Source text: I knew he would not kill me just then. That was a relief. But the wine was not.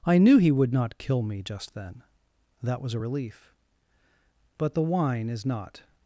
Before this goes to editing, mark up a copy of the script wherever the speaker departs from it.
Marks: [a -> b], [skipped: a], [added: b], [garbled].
I knew he would not kill me just then. That was a relief. But the wine [was -> is] not.